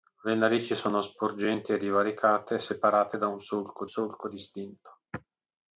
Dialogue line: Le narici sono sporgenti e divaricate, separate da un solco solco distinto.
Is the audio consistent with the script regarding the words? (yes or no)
yes